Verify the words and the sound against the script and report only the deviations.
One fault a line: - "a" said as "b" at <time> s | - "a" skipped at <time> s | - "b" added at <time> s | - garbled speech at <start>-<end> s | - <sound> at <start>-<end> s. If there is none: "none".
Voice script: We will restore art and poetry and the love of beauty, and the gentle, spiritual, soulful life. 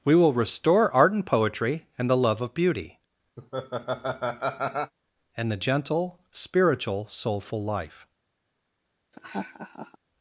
- laugh at 3.4-4.9 s
- laugh at 9.1-10.0 s